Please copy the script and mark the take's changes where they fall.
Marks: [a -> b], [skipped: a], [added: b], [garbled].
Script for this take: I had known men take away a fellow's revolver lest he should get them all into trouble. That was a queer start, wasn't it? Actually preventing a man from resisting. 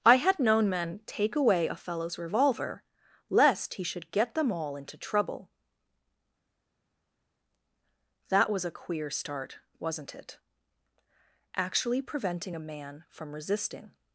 I had known men take away a fellow's revolver lest he should get them all into trouble. That was a queer start, wasn't it? Actually preventing a man from resisting.